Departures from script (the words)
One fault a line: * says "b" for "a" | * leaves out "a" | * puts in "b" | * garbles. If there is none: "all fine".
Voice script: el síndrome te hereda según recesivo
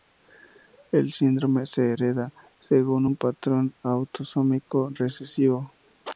* says "se" for "te"
* puts in "un patrón autosómico"